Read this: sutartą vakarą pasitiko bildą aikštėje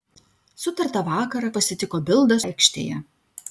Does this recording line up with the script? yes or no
yes